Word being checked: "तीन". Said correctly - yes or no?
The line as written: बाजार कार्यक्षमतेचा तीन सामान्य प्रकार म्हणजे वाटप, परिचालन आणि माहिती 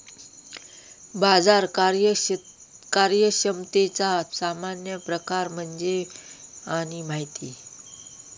no